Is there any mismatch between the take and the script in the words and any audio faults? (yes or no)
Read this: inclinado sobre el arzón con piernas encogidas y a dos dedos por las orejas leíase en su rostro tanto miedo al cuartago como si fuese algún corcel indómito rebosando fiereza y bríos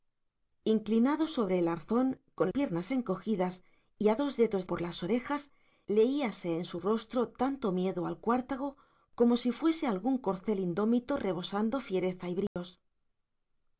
yes